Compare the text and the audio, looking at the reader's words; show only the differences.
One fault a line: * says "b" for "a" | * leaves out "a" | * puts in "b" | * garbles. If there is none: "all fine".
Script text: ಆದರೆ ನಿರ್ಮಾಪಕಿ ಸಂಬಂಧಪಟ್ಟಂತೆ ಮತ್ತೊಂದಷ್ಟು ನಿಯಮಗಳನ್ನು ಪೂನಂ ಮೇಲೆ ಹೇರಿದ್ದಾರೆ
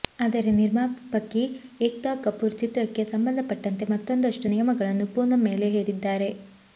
* puts in "ಏಕ್ತಾ ಕಪೂರ್ ಚಿತ್ರಕ್ಕೆ"